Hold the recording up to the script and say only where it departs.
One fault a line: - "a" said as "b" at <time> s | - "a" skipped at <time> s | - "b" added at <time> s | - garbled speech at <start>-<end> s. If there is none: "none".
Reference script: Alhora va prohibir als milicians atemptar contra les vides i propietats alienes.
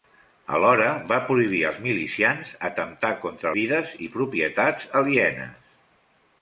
- "les" skipped at 3.5 s